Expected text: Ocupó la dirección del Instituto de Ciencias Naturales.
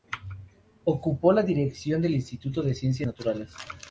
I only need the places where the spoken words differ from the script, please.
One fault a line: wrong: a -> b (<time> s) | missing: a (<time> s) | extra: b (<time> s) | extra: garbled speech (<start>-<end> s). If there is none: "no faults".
no faults